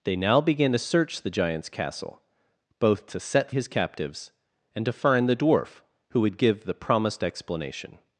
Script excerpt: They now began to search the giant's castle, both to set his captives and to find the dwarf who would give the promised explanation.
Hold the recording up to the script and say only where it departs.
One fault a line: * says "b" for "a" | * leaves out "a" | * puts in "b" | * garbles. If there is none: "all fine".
all fine